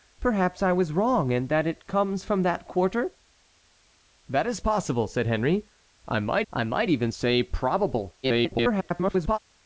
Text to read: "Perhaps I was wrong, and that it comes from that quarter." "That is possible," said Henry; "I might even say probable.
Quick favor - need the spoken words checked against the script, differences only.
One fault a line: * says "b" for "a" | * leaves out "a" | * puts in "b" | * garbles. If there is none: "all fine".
* puts in "I might"
* garbles